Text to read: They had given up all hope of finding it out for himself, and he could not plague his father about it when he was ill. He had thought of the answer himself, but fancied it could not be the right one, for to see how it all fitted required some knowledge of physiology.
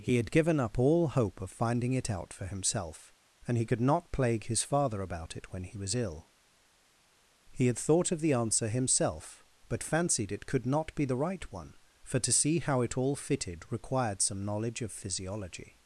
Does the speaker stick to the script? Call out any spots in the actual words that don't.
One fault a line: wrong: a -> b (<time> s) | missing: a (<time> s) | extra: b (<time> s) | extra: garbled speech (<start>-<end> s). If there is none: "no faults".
wrong: They -> He (0.0 s)